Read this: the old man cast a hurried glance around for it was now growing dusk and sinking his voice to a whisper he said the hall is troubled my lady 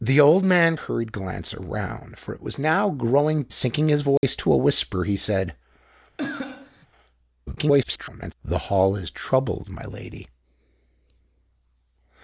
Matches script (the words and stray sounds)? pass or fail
fail